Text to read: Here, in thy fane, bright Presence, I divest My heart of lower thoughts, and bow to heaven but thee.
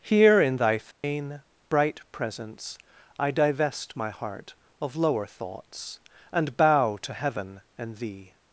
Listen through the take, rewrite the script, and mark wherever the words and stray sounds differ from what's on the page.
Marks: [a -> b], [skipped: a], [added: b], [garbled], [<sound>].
Here, in thy fane, [dropout] bright Presence, I divest My heart of lower thoughts, and bow to heaven [but -> and] thee.